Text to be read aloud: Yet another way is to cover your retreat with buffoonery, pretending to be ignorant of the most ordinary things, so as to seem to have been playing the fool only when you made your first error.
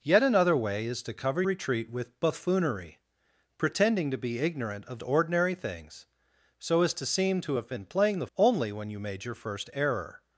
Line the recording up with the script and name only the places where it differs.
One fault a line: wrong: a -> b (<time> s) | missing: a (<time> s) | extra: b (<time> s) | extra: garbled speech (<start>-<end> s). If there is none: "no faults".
missing: your (1.4 s)
missing: the most (5.0 s)
missing: fool (8.3 s)